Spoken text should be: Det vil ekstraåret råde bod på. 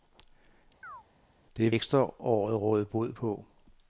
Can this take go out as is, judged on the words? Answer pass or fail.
fail